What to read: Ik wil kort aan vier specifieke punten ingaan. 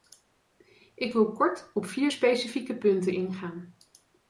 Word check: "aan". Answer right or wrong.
wrong